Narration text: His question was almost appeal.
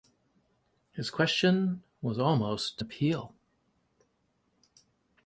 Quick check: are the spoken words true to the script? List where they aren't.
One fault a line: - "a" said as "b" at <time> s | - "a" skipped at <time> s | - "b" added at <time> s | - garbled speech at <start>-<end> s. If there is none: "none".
none